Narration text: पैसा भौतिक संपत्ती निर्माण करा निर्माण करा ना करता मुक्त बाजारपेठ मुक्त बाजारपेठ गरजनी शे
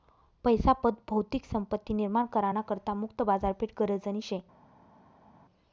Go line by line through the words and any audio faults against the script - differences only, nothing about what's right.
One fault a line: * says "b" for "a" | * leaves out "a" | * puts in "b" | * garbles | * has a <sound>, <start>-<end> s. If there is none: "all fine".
* puts in "पत"
* leaves out "निर्माण करा"
* leaves out "मुक्त बाजारपेठ"